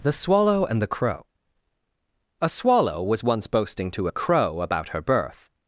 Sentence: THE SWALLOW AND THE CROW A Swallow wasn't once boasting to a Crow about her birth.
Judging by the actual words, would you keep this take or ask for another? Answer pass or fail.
fail